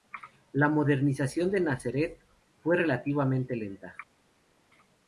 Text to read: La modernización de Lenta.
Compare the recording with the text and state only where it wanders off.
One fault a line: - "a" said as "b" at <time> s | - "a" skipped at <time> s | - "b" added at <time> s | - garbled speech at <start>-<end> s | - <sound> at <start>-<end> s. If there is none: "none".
- "Nazaret fue relativamente" added at 1.6 s